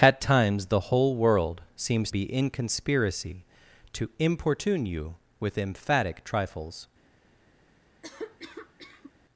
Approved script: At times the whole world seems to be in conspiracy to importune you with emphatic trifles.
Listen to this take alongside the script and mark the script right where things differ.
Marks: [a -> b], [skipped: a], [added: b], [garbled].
At times the whole world seems [skipped: to] be in conspiracy to importune you with emphatic trifles.